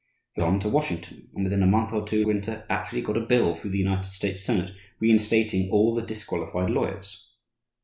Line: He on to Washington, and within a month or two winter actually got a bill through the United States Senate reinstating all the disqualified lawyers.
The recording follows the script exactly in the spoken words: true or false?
true